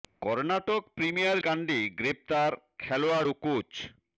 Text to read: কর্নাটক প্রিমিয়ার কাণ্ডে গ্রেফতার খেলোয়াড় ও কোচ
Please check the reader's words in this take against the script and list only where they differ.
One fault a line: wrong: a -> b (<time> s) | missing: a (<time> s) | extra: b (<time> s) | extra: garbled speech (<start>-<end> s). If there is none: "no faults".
no faults